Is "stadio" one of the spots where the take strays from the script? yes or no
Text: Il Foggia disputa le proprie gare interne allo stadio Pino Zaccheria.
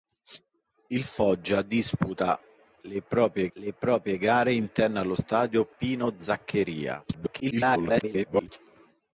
no